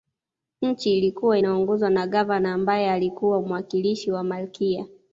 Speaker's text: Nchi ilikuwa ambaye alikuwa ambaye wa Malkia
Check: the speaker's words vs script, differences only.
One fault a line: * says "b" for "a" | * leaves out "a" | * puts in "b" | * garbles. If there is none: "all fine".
* puts in "inaongozwa na Gavana"
* says "mwakilishi" for "ambaye"